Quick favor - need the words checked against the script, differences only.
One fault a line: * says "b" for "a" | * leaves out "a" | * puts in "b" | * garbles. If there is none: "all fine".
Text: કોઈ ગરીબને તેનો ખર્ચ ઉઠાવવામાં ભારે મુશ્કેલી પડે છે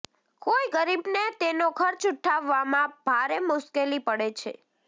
all fine